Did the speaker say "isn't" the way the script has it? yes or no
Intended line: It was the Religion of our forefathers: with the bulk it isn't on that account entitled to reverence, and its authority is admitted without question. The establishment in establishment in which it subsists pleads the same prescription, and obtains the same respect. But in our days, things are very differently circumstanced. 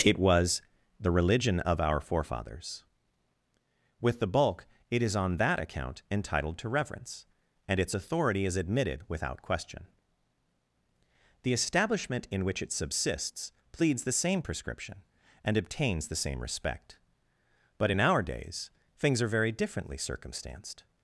no